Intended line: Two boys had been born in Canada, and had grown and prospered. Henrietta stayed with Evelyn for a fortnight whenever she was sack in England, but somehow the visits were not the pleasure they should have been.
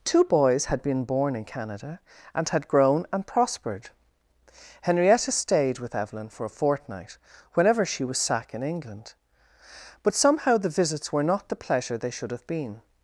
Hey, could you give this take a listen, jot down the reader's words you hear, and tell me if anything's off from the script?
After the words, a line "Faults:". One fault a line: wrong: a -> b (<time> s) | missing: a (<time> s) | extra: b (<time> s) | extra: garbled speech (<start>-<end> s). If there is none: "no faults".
Two boys had been born in Canada, and had grown and prospered. Henrietta stayed with Evelyn for a fortnight whenever she was sack in England, but somehow the visits were not the pleasure they should have been.
Faults:
no faults